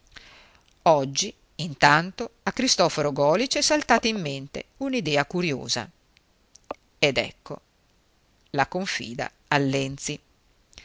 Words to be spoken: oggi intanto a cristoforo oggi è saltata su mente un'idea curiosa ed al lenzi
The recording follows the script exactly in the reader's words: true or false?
false